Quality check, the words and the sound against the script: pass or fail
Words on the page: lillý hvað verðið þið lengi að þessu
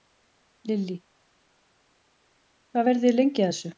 pass